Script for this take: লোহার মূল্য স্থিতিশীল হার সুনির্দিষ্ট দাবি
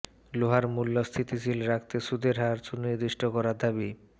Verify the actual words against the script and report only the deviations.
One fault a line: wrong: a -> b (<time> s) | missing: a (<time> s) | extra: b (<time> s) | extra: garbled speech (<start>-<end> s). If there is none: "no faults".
extra: রাখতে সুদের (1.7 s)
extra: করার (3.4 s)